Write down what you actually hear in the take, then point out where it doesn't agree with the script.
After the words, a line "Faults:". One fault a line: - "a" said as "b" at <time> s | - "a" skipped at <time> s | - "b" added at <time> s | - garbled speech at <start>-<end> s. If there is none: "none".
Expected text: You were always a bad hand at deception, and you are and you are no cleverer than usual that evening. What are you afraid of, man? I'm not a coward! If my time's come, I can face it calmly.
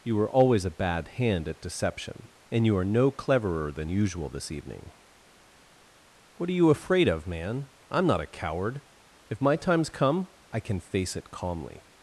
You were always a bad hand at deception, and you are no cleverer than usual this evening. What are you afraid of, man? I'm not a coward! If my time's come, I can face it calmly.
Faults:
- "and you are" skipped at 2.9 s
- "that" said as "this" at 4.3 s